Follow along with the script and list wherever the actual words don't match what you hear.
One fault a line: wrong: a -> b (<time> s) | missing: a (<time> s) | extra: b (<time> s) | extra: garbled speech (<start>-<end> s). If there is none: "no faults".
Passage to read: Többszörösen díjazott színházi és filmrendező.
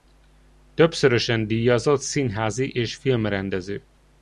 no faults